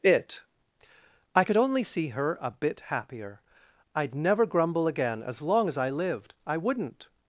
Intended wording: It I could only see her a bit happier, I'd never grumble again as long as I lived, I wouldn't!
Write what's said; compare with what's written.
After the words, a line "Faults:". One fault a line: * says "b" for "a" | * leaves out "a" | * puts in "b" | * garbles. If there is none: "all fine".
It I could only see her a bit happier, I'd never grumble again as long as I lived, I wouldn't!
Faults:
all fine